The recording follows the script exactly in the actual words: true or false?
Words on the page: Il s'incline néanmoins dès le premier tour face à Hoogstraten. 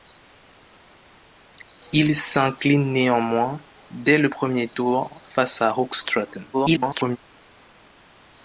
false